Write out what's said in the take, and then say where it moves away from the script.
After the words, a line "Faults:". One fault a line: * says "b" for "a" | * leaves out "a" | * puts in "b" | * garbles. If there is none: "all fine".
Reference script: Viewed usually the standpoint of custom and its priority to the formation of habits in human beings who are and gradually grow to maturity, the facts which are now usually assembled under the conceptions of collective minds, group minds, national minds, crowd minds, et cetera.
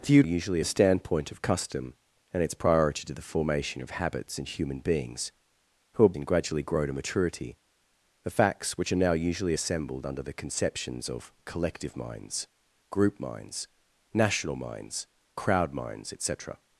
Viewed usually the standpoint of custom and its priority to the formation of habits in human beings who are and gradually grow to maturity, the facts which are now usually assembled under the conceptions of collective minds, group minds, national minds, crowd minds, et cetera.
Faults:
all fine